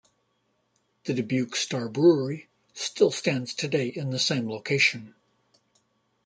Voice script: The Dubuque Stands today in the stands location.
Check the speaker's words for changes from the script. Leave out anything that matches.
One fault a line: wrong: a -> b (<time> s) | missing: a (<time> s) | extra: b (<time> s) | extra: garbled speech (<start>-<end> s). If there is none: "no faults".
extra: Star Brewery still (1.6 s)
wrong: stands -> same (4.2 s)